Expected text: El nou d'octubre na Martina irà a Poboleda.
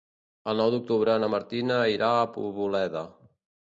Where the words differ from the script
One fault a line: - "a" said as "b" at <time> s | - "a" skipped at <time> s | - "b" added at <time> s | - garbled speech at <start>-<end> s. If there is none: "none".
none